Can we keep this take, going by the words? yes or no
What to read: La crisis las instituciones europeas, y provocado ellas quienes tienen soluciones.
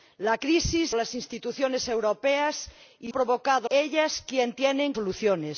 yes